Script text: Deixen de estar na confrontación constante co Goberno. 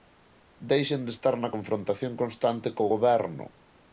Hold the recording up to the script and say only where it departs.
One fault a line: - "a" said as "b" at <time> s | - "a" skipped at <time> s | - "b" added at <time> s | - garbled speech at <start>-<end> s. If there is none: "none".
none